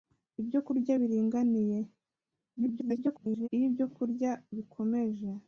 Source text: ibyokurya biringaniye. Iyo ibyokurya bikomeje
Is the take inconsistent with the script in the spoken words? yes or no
yes